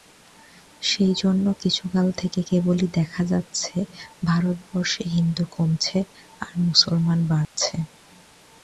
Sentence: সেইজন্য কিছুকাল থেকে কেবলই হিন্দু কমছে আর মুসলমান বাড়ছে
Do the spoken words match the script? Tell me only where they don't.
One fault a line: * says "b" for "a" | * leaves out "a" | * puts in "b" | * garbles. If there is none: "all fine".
* puts in "দেখা যাচ্ছে ভারতবর্ষে"